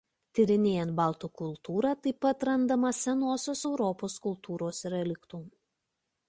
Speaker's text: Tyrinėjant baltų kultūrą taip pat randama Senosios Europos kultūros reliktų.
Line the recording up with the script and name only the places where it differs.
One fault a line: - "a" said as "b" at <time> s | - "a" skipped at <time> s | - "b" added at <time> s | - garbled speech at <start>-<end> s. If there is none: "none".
none